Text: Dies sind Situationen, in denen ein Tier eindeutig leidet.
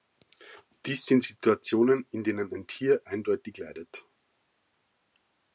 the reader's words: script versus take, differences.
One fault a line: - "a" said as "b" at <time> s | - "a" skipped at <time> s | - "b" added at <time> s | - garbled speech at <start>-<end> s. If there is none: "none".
none